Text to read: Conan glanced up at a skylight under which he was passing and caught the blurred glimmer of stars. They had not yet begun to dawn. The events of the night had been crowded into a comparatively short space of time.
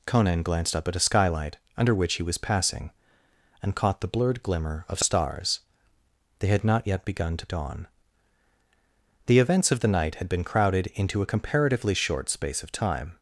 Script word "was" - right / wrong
right